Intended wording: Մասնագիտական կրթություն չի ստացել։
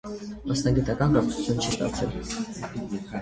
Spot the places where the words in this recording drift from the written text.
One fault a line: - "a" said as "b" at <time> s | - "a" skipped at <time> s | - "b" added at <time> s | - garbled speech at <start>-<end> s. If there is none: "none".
none